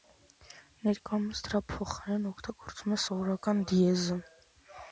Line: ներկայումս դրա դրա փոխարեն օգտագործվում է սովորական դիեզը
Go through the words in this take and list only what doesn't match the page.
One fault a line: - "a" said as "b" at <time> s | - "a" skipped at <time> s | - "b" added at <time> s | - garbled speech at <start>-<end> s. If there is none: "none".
- "դրա" skipped at 1.6 s